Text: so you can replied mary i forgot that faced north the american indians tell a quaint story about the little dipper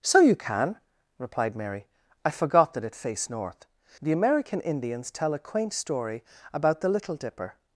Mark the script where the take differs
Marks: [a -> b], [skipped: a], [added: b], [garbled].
so you can replied mary i forgot that [added: it] faced north the american indians tell a quaint story about the little dipper